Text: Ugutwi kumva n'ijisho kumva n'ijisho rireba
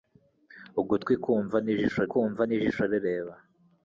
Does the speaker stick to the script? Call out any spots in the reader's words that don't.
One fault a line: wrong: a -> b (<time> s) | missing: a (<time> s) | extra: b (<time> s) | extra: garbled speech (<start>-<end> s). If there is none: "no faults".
no faults